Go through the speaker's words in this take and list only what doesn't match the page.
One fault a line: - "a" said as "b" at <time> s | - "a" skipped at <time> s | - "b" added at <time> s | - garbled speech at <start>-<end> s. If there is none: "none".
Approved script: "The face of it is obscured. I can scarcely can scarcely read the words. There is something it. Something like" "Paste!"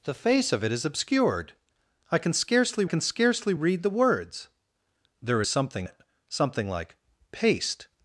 none